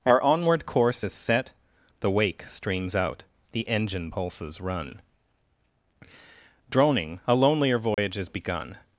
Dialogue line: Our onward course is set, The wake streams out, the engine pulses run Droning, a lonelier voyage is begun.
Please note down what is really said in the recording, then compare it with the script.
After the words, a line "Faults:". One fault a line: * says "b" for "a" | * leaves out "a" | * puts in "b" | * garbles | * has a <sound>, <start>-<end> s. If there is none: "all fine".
Our onward course is set, The wake streams out, the engine pulses run Droning, a lonelier voyage is begun.
Faults:
* has a dropout, 7.9-8.0 s